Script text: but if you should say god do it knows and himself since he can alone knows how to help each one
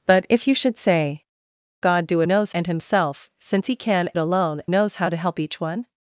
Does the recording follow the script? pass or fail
pass